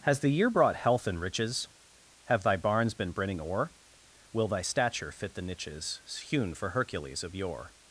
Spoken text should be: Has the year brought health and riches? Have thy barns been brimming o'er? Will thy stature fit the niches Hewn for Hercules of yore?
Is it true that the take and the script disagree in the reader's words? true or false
false